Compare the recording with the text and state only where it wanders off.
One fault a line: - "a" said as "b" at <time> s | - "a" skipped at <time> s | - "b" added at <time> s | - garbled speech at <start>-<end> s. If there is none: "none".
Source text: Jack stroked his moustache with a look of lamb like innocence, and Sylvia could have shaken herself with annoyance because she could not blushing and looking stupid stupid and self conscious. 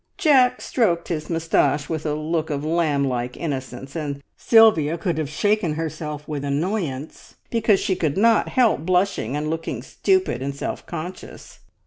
- "help" added at 8.5 s
- "stupid" skipped at 10.4 s